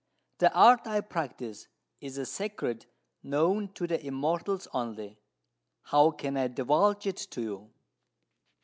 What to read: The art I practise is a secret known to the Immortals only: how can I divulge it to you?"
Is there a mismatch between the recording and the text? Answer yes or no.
no